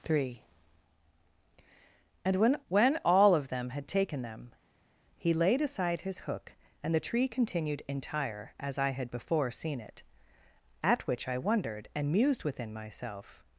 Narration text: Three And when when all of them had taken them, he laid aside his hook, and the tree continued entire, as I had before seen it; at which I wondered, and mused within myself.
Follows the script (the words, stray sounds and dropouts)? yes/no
yes